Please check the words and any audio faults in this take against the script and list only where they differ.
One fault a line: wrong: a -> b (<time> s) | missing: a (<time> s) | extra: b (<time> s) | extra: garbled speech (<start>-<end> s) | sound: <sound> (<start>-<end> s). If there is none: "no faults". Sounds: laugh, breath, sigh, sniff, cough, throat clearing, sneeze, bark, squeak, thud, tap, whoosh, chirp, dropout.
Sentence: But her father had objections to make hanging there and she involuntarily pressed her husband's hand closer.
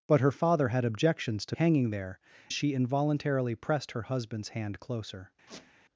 missing: make (1.6 s)
missing: and (2.2 s)
sound: squeak (5.5-5.7 s)